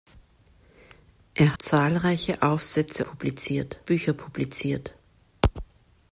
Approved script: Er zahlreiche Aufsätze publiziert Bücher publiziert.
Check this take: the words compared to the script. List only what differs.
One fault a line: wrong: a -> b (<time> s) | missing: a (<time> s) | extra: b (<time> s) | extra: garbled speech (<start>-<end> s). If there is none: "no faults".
no faults